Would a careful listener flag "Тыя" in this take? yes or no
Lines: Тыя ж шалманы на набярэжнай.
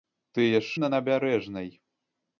no